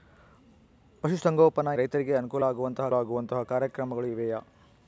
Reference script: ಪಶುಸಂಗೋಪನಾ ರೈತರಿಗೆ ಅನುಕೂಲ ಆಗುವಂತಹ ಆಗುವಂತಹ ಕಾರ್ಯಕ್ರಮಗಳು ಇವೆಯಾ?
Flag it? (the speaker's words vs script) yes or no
no